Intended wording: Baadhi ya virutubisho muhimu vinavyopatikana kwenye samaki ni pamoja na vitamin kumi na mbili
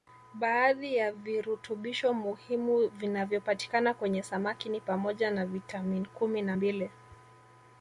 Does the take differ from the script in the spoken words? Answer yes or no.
no